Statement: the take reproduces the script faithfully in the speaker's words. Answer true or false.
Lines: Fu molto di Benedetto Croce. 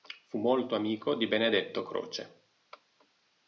false